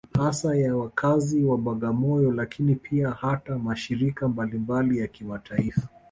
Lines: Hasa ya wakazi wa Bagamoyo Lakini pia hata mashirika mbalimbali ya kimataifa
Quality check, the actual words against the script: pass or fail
pass